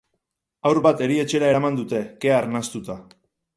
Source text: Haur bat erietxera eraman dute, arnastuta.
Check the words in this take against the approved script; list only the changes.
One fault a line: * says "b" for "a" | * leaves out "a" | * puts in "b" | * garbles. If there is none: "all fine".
* puts in "kea"